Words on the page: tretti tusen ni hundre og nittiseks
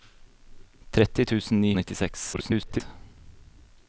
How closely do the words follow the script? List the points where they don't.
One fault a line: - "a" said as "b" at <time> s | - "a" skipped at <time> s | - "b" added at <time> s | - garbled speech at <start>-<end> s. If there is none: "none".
- "hundre" skipped at 1.7 s
- garbled speech at 2.3-2.8 s